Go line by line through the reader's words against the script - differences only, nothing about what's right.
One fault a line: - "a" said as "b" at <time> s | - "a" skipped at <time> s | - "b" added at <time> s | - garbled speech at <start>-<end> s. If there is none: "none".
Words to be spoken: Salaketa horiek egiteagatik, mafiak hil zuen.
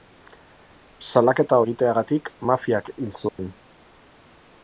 - "horiek" skipped at 1.6 s